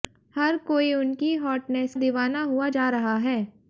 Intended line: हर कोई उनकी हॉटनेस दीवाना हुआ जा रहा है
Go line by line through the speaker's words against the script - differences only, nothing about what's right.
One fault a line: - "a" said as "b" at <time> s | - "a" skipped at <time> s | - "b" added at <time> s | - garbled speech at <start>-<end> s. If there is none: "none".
none